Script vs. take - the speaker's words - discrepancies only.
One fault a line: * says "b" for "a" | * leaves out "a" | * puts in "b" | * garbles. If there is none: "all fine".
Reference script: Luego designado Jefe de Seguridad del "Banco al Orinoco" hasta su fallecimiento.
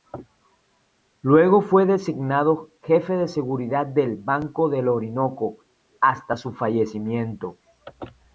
* puts in "fue"
* says "del" for "al"